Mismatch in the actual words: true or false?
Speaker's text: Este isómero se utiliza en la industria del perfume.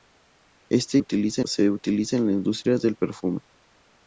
true